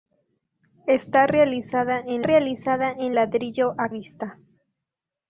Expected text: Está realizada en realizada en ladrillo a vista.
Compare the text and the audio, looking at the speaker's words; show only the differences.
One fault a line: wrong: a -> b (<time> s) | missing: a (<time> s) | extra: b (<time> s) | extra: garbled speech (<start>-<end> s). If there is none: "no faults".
no faults